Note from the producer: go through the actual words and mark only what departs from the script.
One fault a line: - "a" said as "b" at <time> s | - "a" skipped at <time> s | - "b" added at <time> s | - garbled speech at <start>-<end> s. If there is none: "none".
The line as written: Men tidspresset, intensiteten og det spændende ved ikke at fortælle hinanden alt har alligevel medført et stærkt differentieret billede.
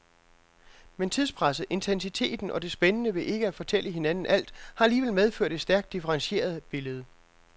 none